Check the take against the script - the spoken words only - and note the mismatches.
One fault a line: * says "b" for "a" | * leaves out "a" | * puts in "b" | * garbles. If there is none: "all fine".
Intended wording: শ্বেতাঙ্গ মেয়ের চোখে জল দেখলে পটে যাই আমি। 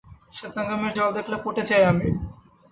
* leaves out "চোখে"